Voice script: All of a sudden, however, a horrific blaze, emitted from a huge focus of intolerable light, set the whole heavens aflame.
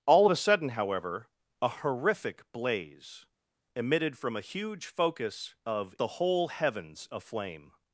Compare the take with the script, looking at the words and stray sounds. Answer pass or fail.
fail